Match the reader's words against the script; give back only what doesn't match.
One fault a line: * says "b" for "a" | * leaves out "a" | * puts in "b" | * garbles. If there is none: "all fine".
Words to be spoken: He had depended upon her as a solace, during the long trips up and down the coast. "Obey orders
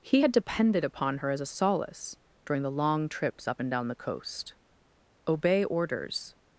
all fine